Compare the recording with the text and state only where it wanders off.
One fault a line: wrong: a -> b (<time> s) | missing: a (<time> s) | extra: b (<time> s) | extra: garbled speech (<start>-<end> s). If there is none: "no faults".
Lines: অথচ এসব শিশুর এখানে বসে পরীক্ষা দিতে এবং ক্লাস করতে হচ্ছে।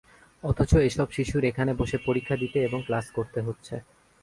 no faults